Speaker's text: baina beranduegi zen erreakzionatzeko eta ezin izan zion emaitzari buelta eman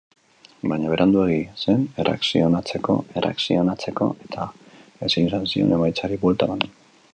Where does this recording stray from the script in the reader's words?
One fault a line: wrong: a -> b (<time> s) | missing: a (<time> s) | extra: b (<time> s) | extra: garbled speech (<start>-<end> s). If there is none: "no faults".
extra: erreakzionatzeko (3.2 s)